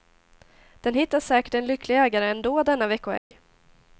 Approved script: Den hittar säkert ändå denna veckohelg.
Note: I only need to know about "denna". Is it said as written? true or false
true